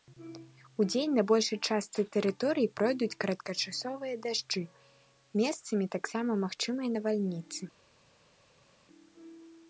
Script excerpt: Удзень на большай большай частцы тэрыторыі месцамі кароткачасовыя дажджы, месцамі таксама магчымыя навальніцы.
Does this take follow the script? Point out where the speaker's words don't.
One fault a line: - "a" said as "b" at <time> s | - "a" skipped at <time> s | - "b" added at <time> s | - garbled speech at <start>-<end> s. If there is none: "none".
- "большай" skipped at 1.6 s
- "месцамі" said as "пройдуць" at 2.8 s